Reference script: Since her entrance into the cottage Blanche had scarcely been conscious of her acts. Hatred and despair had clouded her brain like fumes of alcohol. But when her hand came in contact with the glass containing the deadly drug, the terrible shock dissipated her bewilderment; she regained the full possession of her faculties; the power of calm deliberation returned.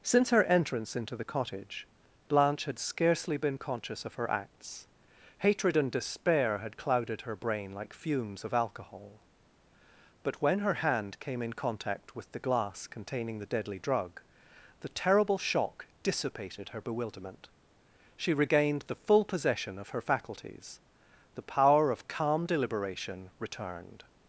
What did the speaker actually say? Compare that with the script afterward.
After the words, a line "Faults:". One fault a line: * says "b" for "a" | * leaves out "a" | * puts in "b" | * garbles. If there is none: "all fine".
Since her entrance into the cottage Blanche had scarcely been conscious of her acts. Hatred and despair had clouded her brain like fumes of alcohol. But when her hand came in contact with the glass containing the deadly drug, the terrible shock dissipated her bewilderment; she regained the full possession of her faculties; the power of calm deliberation returned.
Faults:
all fine